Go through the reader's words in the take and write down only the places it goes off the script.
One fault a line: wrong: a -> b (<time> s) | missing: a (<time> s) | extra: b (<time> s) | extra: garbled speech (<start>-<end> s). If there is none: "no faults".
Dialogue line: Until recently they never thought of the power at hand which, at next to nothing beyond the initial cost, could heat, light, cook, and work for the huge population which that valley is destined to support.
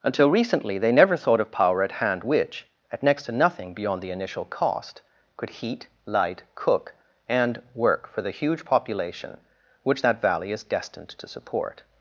missing: the (1.5 s)